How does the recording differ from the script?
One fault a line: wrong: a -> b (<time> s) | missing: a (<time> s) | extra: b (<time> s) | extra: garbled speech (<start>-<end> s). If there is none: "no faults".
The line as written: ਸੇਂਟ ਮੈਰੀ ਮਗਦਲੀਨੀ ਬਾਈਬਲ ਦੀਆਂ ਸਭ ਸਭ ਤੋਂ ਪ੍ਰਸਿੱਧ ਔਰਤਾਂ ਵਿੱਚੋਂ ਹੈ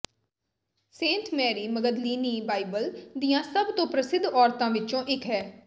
missing: ਸਭ (3.7 s)
extra: ਇੱਕ (5.1 s)